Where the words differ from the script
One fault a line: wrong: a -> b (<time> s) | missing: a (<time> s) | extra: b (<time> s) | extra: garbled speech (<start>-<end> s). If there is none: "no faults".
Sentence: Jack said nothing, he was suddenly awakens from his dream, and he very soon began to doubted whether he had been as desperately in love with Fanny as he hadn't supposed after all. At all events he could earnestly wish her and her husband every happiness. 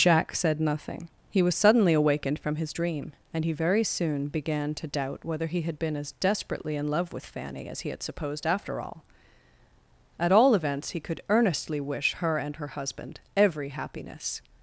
wrong: awakens -> awakened (1.9 s)
wrong: doubted -> doubt (4.9 s)
wrong: hadn't -> had (7.9 s)